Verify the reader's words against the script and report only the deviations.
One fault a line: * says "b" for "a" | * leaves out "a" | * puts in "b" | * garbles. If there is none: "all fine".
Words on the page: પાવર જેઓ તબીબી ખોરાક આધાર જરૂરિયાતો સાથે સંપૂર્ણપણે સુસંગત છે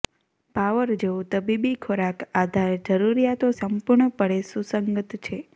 * leaves out "સાથે"